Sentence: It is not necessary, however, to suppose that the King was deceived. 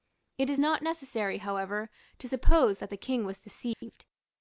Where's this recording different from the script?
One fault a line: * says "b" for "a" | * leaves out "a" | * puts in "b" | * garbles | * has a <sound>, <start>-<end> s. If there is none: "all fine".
* has a dropout, 3.7-3.8 s